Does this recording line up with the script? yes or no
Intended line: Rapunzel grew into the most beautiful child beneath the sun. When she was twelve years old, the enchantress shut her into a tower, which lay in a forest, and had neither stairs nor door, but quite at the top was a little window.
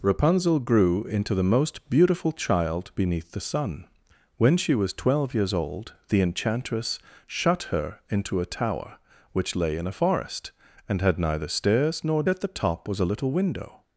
no